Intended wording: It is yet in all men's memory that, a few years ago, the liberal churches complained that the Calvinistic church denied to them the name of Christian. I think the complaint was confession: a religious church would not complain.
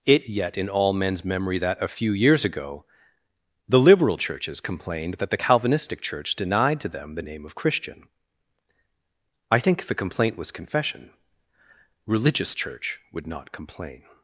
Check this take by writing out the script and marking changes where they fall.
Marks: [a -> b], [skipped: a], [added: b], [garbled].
It [skipped: is] yet in all men's memory that, a few years ago, the liberal churches complained that the Calvinistic church denied to them the name of Christian. I think the complaint was confession: [skipped: a] religious church would not complain.